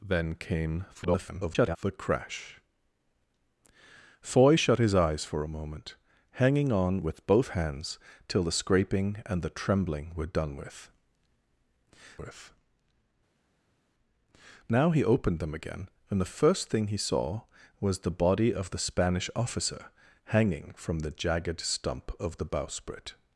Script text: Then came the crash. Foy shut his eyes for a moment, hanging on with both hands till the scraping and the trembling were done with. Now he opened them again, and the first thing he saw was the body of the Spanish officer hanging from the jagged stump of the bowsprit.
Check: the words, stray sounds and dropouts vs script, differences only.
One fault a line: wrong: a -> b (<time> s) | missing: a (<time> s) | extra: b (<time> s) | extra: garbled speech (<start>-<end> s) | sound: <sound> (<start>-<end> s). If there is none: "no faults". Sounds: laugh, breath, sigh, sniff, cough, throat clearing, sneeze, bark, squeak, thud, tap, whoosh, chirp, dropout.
extra: garbled speech (0.9-1.8 s)
extra: with (12.2 s)